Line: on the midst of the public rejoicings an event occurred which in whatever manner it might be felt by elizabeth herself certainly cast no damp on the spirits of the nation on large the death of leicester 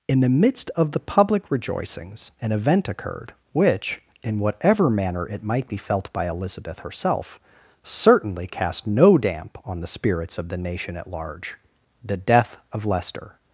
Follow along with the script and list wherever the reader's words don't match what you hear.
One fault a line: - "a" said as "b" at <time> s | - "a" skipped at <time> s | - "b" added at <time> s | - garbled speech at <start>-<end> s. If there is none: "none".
- "on" said as "in" at 0.1 s
- "on" said as "at" at 11.0 s